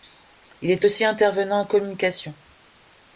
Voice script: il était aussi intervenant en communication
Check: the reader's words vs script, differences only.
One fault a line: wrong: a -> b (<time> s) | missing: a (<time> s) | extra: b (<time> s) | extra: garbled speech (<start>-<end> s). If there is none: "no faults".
wrong: était -> est (0.7 s)